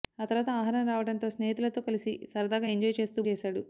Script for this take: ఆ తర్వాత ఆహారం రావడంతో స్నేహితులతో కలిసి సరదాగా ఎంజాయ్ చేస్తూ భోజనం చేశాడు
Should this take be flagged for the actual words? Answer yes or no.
yes